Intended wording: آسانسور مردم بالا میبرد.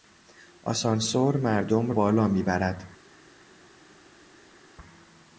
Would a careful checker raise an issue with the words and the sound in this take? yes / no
no